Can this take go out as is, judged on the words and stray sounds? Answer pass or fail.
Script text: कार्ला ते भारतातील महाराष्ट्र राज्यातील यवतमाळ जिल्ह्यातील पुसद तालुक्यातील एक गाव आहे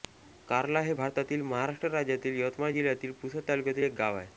fail